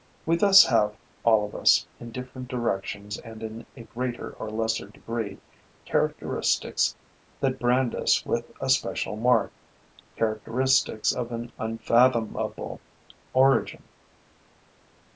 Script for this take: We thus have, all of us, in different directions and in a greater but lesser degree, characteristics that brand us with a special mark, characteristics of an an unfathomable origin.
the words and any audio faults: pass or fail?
fail